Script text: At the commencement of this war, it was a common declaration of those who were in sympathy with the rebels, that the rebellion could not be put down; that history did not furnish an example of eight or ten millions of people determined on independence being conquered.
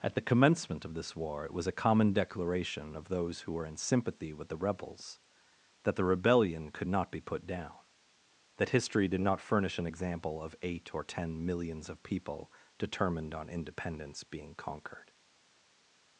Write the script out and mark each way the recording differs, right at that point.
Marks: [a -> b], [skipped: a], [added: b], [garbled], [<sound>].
At the commencement of this war, it was a common declaration of those who were in sympathy with the rebels, that the rebellion could not be put down; that history did not furnish an example of eight or ten millions of people determined on independence being conquered.